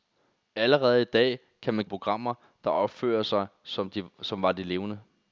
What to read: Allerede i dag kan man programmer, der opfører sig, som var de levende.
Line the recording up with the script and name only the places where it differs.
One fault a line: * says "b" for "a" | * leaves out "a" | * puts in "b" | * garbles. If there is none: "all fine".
all fine